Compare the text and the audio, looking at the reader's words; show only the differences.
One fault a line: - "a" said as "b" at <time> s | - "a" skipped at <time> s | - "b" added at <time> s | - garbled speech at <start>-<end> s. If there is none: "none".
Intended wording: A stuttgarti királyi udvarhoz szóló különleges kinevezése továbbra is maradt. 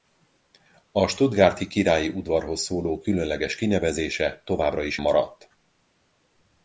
none